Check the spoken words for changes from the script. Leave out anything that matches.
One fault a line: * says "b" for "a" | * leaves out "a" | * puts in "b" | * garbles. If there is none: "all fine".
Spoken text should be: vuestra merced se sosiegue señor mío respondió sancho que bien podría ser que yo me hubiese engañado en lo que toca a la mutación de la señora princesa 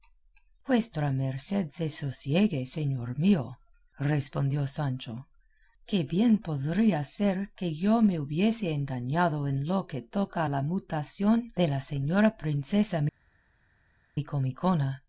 all fine